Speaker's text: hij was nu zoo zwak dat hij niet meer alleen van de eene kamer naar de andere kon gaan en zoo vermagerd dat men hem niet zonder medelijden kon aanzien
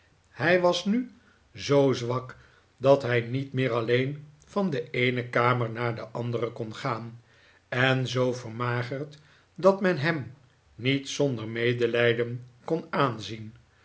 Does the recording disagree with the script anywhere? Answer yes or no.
no